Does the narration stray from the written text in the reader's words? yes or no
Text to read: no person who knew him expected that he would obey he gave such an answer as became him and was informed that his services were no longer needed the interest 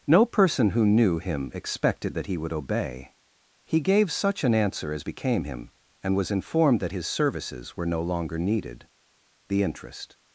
no